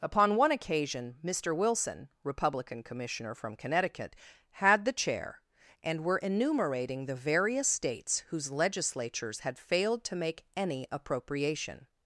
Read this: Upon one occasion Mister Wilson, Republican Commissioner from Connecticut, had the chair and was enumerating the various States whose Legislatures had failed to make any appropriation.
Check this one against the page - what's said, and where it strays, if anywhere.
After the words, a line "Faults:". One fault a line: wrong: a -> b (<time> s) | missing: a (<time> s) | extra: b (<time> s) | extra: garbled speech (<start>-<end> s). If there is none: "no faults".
Upon one occasion Mister Wilson, Republican Commissioner from Connecticut, had the chair and were enumerating the various States whose Legislatures had failed to make any appropriation.
Faults:
wrong: was -> were (6.0 s)